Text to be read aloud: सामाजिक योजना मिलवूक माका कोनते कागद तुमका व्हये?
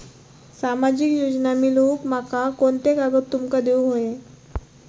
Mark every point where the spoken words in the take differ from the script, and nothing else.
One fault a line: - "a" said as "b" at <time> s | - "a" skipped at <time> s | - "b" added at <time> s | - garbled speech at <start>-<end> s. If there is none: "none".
- "देऊक" added at 3.6 s